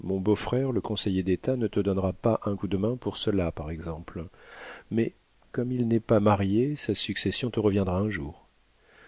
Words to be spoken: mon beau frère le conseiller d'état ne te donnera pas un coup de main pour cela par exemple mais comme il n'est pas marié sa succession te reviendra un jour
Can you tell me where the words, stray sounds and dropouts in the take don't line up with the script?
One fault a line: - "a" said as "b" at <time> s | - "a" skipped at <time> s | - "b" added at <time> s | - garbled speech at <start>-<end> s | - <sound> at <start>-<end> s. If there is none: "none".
none